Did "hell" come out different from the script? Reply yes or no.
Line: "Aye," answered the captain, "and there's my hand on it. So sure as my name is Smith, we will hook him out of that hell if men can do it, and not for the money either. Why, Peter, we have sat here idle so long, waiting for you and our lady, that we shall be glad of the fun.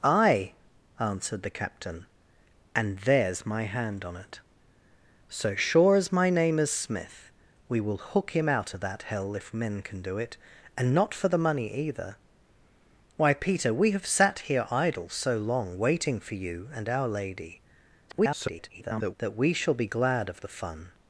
no